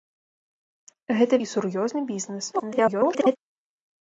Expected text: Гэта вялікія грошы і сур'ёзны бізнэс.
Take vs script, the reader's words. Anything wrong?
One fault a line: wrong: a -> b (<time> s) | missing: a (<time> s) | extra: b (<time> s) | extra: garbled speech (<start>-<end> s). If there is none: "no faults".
missing: вялікія грошы (1.4 s)
extra: garbled speech (2.5-3.4 s)